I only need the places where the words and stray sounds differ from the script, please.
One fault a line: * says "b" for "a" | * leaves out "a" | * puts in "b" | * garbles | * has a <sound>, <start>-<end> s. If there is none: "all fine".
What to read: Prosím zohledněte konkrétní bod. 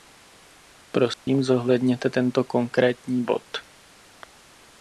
* has a dropout, 1.1-1.3 s
* puts in "tento"